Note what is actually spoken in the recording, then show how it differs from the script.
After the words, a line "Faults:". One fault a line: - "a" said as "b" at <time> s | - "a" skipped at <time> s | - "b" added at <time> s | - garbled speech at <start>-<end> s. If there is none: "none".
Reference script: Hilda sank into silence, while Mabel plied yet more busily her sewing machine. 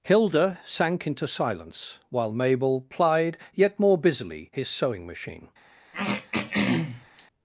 Hilda sank into silence, while Mabel plied yet more busily his sewing machine.
Faults:
- "her" said as "his" at 4.5 s